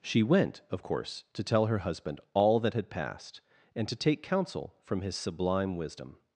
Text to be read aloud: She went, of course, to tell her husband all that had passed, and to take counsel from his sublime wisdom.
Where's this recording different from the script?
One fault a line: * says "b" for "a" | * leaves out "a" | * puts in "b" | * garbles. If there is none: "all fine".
all fine